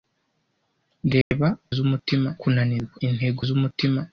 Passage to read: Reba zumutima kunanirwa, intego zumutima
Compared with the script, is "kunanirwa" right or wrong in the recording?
right